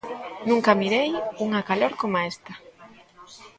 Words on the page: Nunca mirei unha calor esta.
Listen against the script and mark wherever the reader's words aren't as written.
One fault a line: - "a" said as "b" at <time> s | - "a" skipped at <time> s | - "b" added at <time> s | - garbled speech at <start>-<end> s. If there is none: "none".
- "coma" added at 2.0 s